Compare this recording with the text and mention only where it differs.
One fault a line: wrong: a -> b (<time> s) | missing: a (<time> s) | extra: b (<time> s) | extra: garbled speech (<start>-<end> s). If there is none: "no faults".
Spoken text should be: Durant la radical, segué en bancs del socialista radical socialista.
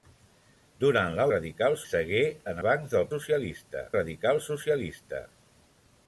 no faults